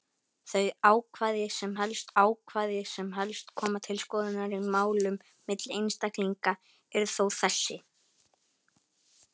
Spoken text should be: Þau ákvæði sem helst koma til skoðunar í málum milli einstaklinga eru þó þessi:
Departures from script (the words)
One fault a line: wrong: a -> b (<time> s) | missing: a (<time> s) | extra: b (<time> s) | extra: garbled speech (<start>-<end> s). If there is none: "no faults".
extra: ákvæði sem helst (2.2 s)